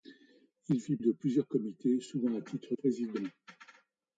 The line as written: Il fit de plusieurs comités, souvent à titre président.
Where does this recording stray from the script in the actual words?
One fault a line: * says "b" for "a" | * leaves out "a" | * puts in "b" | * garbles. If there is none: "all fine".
all fine